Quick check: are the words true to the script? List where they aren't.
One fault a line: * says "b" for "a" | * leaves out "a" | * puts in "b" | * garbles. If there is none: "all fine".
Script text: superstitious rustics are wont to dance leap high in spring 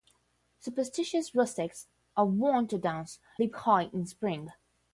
all fine